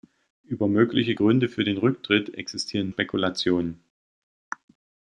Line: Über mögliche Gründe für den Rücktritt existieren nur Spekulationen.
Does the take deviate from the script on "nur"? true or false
true